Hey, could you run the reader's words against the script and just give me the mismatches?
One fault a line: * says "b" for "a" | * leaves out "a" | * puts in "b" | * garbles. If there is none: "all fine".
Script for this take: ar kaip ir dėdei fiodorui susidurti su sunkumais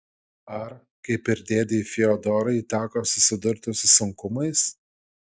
* puts in "teko"